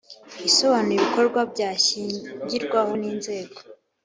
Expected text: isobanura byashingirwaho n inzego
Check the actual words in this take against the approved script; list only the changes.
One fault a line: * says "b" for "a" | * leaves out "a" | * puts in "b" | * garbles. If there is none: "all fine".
* puts in "ibikorwa"